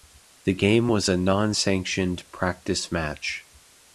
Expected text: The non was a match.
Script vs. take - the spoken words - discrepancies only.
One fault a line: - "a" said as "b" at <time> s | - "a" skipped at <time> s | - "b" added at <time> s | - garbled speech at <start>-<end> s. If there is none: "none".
- "non" said as "game" at 0.6 s
- "non sanctioned practice" added at 1.2 s